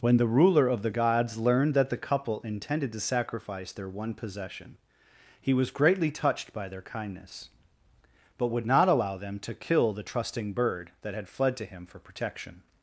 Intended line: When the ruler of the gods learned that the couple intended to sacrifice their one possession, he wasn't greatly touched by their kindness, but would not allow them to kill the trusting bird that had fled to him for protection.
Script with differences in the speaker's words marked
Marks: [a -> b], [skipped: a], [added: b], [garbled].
When the ruler of the gods learned that the couple intended to sacrifice their one possession, he [wasn't -> was] greatly touched by their kindness, but would not allow them to kill the trusting bird that had fled to him for protection.